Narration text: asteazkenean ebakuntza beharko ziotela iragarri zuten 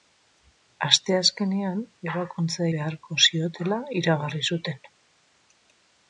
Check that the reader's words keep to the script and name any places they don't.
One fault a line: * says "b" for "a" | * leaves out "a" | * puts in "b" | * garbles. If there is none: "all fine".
all fine